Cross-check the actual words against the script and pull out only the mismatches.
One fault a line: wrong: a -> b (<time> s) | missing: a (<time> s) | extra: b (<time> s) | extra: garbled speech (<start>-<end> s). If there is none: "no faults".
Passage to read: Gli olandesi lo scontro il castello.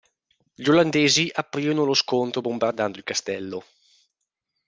extra: aprirono (1.3 s)
extra: bombardando (2.4 s)